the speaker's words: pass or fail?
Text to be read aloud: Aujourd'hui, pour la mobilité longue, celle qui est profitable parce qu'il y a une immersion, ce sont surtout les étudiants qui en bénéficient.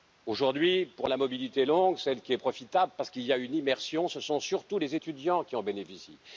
pass